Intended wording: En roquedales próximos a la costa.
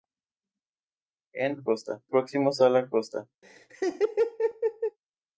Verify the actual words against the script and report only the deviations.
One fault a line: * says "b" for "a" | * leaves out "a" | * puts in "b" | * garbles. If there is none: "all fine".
* says "costa" for "roquedales"